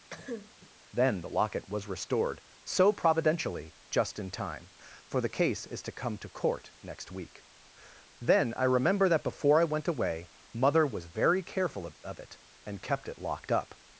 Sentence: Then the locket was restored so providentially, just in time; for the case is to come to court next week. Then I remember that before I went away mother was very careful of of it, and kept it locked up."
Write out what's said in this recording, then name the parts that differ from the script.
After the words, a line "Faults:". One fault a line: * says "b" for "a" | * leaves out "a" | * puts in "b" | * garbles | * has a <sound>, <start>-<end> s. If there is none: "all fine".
Then the locket was restored so providentially, just in time; for the case is to come to court next week. Then I remember that before I went away mother was very careful of of it, and kept it locked up."
Faults:
* has a cough, 0.1-0.7 s